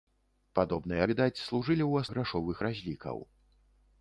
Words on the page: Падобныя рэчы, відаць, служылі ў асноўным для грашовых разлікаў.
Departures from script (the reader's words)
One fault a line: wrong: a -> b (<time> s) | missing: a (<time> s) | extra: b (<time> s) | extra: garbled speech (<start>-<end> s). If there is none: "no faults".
missing: рэчы (1.0 s)
missing: асноўным для (2.1 s)